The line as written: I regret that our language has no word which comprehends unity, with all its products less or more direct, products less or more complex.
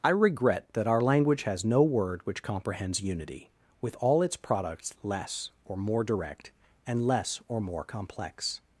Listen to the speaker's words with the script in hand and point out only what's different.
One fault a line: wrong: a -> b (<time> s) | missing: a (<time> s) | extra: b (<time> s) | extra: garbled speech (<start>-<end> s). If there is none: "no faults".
wrong: products -> and (6.9 s)